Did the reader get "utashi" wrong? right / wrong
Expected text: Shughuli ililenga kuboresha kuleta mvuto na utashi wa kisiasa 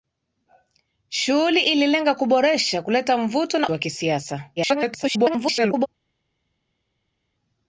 wrong